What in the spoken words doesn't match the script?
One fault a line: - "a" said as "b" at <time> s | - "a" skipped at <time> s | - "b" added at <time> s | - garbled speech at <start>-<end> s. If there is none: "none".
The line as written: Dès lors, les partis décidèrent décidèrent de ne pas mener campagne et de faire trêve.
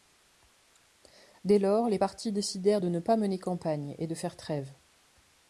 - "décidèrent" skipped at 2.8 s